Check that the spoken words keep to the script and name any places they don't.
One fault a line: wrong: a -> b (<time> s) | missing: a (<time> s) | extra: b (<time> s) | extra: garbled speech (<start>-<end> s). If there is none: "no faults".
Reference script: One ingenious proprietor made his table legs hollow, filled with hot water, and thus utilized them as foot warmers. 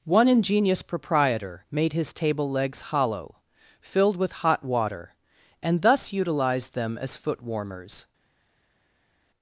no faults